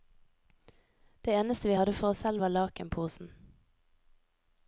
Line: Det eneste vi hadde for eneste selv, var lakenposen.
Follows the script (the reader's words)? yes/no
no